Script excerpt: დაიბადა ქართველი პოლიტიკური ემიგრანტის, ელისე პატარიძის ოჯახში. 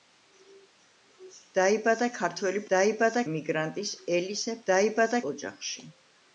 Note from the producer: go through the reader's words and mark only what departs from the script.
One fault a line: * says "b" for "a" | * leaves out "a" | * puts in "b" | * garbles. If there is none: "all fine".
* says "დაიბადა" for "პოლიტიკური"
* says "დაიბადა" for "პატარიძის"